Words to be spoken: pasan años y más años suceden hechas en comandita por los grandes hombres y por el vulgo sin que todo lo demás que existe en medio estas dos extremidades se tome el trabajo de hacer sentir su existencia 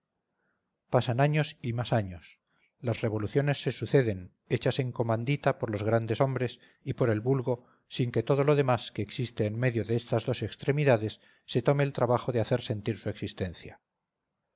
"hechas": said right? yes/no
yes